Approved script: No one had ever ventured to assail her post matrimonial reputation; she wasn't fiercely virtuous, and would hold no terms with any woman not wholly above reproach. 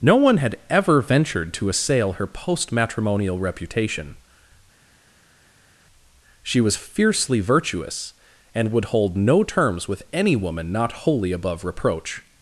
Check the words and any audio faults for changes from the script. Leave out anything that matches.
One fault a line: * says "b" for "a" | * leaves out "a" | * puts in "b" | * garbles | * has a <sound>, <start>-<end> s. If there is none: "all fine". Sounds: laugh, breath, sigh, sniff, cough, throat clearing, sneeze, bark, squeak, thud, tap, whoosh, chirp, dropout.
* says "was" for "wasn't"